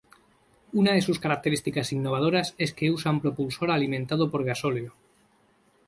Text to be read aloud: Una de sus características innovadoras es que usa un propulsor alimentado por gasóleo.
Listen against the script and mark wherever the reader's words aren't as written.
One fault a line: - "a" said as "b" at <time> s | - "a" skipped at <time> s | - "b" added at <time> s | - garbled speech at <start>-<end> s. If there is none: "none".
none